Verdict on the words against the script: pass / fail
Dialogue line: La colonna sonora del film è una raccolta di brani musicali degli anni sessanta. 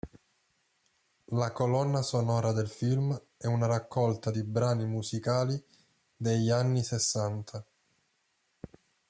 pass